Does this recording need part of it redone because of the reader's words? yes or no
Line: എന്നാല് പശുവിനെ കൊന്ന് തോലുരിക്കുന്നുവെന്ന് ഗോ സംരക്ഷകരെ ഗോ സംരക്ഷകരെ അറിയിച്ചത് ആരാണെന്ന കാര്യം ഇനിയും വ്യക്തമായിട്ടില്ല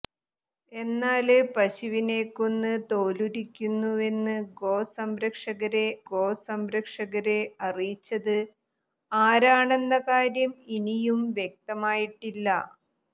no